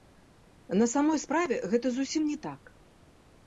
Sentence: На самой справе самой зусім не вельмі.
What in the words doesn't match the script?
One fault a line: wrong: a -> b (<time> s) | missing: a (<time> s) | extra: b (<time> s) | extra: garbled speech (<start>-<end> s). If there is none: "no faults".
wrong: самой -> гэта (1.7 s)
wrong: вельмі -> так (2.5 s)